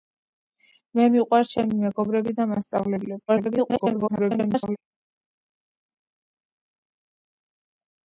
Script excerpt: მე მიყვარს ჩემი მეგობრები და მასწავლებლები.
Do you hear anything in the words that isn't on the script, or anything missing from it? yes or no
yes